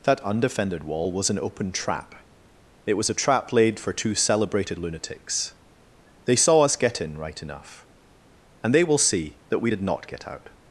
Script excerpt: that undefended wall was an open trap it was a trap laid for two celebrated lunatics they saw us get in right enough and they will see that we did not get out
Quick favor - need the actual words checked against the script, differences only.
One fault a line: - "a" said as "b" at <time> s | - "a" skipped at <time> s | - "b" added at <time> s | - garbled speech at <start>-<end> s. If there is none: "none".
none